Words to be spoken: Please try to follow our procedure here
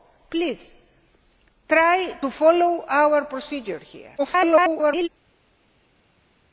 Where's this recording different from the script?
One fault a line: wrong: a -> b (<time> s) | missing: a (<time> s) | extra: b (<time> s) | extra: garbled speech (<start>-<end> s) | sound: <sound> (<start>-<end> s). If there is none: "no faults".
extra: garbled speech (4.2-5.1 s)